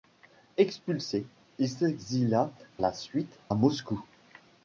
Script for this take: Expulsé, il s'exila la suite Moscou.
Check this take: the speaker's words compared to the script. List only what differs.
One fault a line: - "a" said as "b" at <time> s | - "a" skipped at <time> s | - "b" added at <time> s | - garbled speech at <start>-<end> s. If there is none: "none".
none